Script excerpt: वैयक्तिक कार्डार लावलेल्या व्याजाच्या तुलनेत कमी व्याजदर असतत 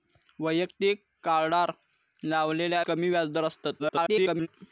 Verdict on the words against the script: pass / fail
fail